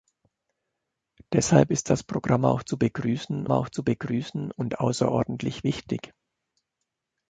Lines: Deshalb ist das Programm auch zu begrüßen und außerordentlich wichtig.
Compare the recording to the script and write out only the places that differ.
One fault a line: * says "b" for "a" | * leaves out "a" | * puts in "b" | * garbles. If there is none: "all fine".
* puts in "auch zu begrüßen"